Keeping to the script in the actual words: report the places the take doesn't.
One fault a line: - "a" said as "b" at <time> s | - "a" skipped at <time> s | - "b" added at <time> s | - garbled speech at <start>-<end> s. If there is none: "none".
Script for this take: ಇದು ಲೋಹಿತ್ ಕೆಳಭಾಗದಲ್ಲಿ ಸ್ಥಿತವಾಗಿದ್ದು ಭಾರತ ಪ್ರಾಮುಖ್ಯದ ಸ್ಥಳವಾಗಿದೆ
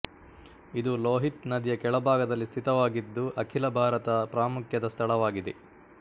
- "ನದಿಯ" added at 1.5 s
- "ಅಖಿಲ" added at 3.4 s